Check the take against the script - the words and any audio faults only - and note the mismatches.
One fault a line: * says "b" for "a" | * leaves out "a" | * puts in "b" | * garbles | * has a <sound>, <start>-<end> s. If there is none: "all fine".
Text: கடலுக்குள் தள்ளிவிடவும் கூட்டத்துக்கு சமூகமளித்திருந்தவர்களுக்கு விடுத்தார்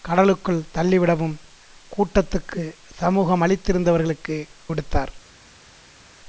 all fine